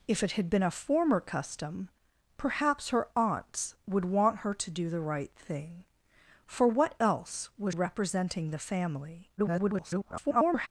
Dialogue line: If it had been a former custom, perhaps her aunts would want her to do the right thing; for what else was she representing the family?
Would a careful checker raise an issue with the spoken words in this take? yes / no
yes